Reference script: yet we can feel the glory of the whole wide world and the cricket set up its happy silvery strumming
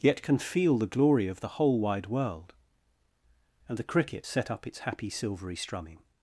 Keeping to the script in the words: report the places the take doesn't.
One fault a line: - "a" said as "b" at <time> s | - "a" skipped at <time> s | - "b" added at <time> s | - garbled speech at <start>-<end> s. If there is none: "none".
- "we" skipped at 0.2 s